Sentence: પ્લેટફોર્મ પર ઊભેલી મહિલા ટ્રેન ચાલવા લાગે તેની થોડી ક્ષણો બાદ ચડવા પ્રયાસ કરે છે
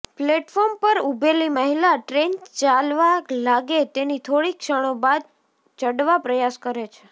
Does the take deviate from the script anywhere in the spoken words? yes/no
no